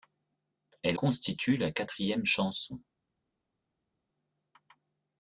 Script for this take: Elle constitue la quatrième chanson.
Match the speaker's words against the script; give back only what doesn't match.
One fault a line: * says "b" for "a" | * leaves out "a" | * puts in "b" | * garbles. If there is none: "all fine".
all fine